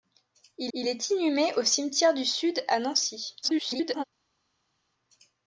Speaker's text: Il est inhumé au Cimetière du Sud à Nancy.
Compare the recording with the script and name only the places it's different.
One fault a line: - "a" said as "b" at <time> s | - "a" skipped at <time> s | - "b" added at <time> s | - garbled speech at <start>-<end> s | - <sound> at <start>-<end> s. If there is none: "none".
- "il" added at 0.7 s
- garbled speech at 3.4-4.0 s